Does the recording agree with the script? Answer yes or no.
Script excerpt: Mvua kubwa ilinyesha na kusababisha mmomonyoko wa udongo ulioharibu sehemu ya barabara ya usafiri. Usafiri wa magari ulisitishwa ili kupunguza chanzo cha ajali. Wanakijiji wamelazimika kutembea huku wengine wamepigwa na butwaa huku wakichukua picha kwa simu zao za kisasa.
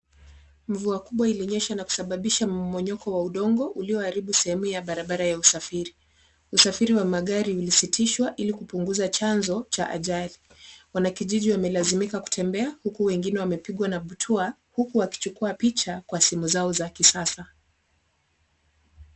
yes